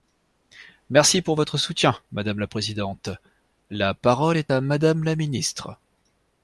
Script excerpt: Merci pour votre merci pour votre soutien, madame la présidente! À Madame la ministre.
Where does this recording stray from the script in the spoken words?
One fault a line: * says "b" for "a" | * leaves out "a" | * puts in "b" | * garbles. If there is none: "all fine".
* leaves out "merci pour votre"
* puts in "La parole est"